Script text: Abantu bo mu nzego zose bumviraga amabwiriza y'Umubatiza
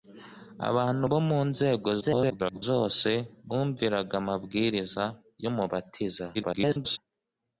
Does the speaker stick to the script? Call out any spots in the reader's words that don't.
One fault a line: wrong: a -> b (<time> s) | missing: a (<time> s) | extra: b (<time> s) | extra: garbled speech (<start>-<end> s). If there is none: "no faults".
extra: garbled speech (2.0-2.6 s)
extra: garbled speech (6.3-7.0 s)